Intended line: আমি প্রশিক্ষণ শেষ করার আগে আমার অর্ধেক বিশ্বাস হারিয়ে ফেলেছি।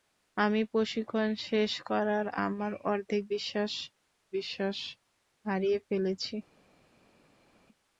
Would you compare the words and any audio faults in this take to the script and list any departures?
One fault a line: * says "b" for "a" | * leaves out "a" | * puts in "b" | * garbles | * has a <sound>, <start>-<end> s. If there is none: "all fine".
* leaves out "আগে"
* puts in "বিশ্বাস"